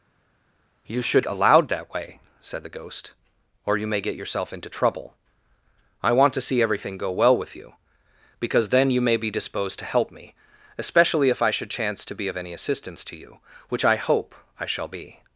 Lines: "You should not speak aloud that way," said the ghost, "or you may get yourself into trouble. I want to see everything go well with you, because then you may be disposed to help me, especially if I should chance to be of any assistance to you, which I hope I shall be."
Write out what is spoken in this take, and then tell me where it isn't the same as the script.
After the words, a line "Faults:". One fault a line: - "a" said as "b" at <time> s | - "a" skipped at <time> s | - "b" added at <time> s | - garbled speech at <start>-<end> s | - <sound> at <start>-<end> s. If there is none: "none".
"You should aloud that way," said the ghost, "or you may get yourself into trouble. I want to see everything go well with you, because then you may be disposed to help me, especially if I should chance to be of any assistance to you, which I hope I shall be."
Faults:
- "not speak" skipped at 1.3 s